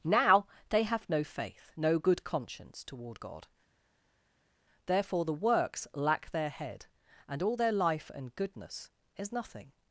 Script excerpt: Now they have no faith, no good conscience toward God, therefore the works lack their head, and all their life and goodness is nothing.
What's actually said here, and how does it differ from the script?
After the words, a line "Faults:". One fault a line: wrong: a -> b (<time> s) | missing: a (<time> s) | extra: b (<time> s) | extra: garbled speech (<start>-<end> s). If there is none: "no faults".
Now they have no faith, no good conscience toward God, therefore the works lack their head, and all their life and goodness is nothing.
Faults:
no faults